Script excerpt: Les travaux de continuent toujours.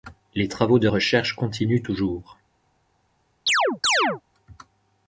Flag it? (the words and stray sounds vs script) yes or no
yes